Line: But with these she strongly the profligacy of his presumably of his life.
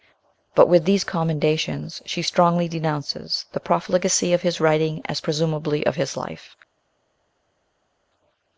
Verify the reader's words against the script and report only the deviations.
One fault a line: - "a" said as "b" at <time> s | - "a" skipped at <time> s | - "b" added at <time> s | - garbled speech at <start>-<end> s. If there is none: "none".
- "commendations" added at 1.0 s
- "denounces" added at 2.7 s
- "writing as" added at 4.6 s